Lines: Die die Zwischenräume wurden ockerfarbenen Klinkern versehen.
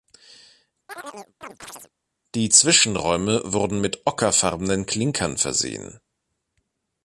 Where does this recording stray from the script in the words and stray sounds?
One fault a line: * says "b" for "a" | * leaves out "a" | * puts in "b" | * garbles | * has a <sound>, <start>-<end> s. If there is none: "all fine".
* has a chirp, 0.9-1.9 s
* leaves out "die"
* puts in "mit"